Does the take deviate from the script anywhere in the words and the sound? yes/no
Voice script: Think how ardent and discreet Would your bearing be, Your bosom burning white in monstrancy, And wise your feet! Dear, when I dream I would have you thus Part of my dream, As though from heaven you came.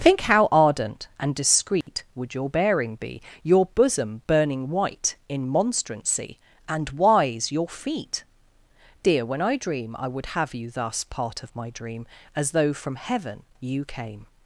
yes